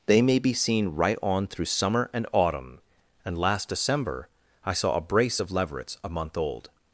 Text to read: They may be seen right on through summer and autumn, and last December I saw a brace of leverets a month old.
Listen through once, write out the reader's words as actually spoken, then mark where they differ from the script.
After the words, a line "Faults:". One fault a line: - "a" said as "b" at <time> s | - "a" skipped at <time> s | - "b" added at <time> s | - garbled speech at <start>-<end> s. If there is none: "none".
They may be seen right on through summer and autumn, and last December I saw a brace of leverets a month old.
Faults:
none